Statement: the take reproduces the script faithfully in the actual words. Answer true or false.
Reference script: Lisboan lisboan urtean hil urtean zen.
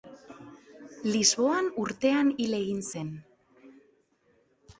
false